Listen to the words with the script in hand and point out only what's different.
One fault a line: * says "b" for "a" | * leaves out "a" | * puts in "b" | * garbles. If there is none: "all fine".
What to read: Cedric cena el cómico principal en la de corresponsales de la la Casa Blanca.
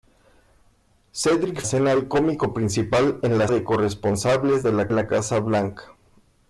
all fine